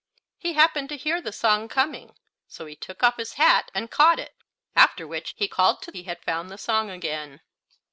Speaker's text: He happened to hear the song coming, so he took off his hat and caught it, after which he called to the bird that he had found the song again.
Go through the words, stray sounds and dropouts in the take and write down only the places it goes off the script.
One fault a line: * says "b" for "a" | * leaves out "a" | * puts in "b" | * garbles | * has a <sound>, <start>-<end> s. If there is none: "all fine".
* leaves out "the bird that"